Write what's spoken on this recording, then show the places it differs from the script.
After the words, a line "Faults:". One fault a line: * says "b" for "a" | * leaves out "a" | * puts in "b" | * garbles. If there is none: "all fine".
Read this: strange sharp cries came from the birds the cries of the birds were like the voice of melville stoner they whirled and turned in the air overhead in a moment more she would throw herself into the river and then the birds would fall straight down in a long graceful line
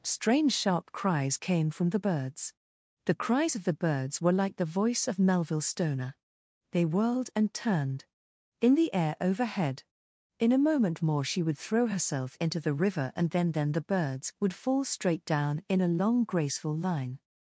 strange sharp cries came from the birds the cries of the birds were like the voice of melville stoner they whirled and turned in the air overhead in a moment more she would throw herself into the river and then then the birds would fall straight down in a long graceful line
Faults:
* puts in "then"